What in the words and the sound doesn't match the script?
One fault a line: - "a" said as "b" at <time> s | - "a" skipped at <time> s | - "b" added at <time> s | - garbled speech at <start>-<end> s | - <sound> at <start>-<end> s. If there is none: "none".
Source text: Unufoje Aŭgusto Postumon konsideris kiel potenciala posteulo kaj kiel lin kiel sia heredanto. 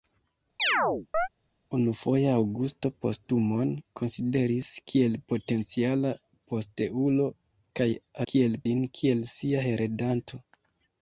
- chirp at 0.6-1.3 s